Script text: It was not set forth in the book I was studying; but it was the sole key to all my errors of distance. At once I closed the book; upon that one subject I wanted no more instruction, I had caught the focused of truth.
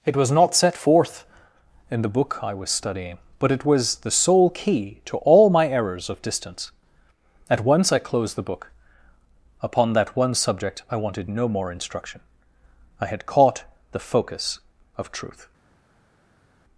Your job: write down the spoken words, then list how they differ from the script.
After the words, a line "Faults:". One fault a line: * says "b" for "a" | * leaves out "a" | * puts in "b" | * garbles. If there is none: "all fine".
It was not set forth in the book I was studying; but it was the sole key to all my errors of distance. At once I closed the book; upon that one subject I wanted no more instruction, I had caught the focus of truth.
Faults:
* says "focus" for "focused"